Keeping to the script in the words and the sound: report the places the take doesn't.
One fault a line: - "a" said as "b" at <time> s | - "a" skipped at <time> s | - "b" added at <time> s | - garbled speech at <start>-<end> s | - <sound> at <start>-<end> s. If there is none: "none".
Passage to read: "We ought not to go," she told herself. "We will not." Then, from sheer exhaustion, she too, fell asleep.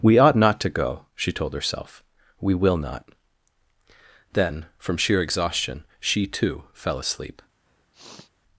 - sniff at 7.7-8.3 s